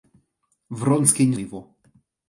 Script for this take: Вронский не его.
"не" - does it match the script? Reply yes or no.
yes